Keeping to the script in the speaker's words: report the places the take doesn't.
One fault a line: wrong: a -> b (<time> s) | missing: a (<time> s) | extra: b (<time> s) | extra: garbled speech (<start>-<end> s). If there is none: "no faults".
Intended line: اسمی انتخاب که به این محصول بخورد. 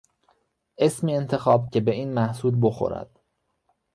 no faults